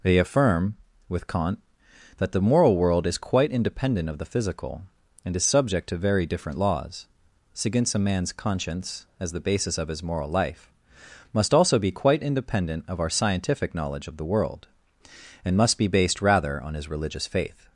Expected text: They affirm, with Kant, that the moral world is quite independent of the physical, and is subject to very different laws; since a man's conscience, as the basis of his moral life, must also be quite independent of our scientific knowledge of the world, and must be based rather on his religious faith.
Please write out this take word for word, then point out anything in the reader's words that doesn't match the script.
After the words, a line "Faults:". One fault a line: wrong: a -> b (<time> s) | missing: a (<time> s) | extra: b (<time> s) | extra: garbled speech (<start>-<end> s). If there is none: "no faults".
They affirm, with Kant, that the moral world is quite independent of the physical, and is subject to very different laws; since a man's conscience, as the basis of his moral life, must also be quite independent of our scientific knowledge of the world, and must be based rather on his religious faith.
Faults:
no faults